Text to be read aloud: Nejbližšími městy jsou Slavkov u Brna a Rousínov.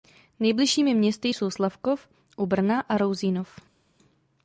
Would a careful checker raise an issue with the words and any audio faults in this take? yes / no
no